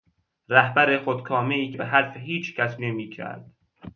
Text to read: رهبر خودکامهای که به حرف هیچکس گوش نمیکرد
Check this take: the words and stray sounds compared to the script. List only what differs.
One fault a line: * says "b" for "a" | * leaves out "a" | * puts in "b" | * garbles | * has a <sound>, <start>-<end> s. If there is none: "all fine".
* leaves out "که"
* leaves out "گوش"